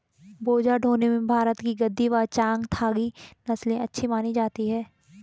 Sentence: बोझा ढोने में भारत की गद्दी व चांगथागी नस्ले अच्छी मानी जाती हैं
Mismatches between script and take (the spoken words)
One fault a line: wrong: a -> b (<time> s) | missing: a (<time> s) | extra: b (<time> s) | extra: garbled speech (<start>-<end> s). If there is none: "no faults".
no faults